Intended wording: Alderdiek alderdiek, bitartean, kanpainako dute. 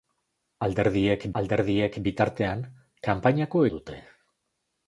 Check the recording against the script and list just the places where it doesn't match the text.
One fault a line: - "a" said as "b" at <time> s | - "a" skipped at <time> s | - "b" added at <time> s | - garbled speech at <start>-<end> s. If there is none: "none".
none